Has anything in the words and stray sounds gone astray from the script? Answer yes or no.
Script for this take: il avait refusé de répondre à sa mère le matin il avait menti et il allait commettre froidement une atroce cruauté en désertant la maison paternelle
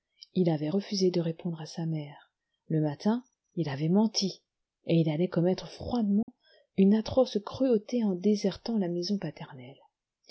yes